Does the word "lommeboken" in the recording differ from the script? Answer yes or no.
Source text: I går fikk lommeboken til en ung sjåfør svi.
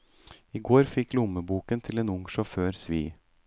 no